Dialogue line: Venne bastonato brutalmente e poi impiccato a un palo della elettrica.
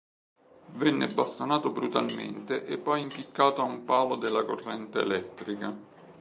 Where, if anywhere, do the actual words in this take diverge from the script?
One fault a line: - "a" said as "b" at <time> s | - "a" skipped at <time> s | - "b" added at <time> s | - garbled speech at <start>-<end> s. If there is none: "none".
- "corrente" added at 4.4 s